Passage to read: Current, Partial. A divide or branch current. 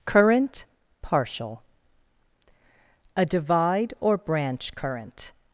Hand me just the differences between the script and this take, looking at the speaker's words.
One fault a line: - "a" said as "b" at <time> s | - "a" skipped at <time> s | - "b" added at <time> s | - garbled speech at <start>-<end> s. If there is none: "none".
none